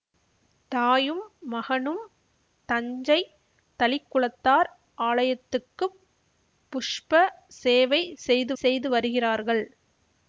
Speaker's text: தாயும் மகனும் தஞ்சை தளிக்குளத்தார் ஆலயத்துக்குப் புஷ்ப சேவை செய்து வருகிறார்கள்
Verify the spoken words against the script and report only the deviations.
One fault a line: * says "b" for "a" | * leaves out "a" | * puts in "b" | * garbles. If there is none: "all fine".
* puts in "செய்து"